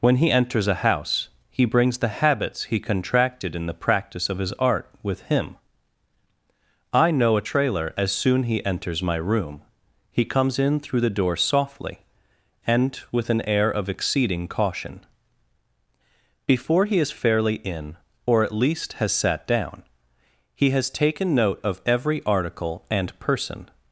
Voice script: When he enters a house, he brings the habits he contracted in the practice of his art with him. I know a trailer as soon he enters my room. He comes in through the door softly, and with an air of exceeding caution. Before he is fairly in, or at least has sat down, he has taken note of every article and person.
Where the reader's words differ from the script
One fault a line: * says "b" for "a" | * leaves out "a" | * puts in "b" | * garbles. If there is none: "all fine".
all fine